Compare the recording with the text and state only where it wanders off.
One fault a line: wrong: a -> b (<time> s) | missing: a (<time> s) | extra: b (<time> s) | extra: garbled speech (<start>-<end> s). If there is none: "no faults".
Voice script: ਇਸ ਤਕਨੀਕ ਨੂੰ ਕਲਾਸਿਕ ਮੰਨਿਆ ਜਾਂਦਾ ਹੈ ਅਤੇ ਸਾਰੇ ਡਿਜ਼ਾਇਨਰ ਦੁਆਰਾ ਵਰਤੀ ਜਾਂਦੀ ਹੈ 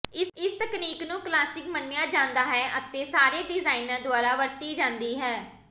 no faults